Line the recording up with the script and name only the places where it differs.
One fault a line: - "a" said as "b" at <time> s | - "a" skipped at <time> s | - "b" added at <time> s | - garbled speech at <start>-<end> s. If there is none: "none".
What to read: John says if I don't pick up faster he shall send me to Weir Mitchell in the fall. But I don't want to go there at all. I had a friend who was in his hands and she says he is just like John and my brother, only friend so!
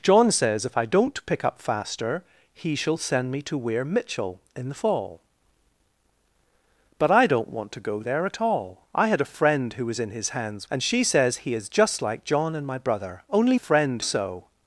none